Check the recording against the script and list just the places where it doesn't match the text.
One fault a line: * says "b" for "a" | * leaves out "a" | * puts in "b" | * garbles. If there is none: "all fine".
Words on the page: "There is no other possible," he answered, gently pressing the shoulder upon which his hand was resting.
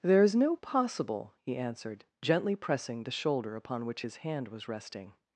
* leaves out "other"